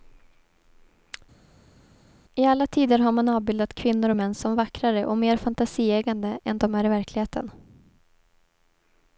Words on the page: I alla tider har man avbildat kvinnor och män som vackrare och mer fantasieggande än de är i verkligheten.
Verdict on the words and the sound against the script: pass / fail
pass